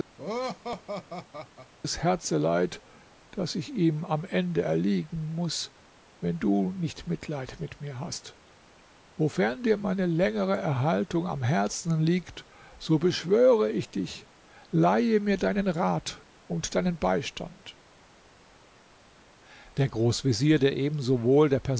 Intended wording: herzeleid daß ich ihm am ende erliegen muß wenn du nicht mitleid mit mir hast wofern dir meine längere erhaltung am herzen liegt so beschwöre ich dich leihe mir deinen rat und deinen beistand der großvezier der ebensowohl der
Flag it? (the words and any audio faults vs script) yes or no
yes